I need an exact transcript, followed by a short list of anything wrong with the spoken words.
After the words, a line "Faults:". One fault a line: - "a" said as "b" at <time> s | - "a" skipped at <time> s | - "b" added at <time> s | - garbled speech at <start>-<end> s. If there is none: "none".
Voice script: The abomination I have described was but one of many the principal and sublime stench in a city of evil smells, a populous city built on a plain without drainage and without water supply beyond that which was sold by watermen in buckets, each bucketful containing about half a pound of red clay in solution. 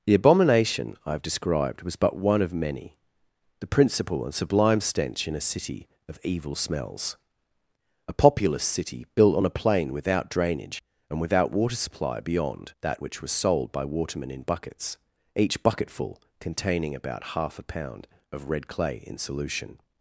The abomination I have described was but one of many the principal and sublime stench in a city of evil smells, a populous city built on a plain without drainage and without water supply beyond that which was sold by watermen in buckets, each bucketful containing about half a pound of red clay in solution.
Faults:
none